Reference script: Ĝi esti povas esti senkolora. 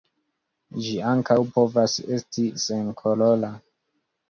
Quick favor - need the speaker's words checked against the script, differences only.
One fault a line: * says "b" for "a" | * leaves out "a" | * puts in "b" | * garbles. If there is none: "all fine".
* says "ankaŭ" for "esti"